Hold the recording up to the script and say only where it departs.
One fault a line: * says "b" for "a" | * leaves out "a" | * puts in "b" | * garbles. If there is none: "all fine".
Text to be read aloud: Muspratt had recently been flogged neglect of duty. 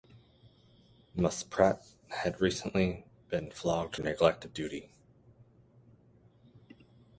all fine